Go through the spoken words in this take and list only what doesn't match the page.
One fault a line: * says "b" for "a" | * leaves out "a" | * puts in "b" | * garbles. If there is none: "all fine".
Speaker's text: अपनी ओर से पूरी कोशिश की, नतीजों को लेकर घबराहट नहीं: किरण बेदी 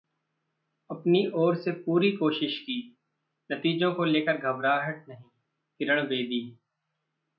all fine